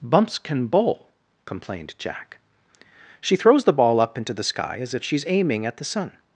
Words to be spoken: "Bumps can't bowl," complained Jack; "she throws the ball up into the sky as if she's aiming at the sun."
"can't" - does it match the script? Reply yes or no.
no